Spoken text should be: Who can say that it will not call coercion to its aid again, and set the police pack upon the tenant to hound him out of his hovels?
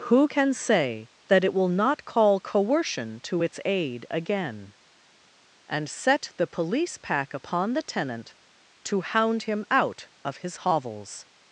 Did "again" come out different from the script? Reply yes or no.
no